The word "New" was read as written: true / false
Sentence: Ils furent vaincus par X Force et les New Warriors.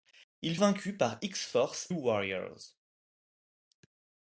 false